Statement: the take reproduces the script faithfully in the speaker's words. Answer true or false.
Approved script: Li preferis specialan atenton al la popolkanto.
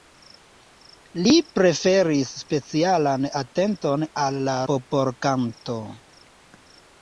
true